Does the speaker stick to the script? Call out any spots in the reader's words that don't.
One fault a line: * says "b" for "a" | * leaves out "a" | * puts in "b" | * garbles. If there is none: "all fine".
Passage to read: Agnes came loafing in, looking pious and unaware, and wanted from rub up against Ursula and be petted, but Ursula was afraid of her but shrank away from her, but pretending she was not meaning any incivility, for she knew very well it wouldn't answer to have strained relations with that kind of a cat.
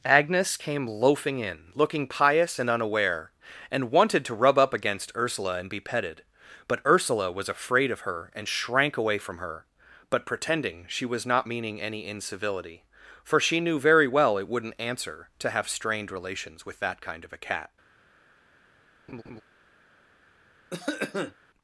* says "to" for "from"
* says "and" for "but"